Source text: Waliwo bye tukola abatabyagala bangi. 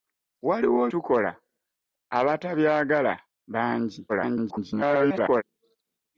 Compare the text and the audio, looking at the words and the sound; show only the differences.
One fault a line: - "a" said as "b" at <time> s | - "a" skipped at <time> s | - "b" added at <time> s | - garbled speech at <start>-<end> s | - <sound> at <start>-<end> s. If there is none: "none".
- "bye" skipped at 0.8 s
- garbled speech at 4.1-5.4 s